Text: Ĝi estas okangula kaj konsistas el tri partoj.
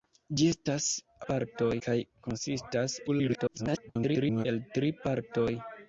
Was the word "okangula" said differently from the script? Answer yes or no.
yes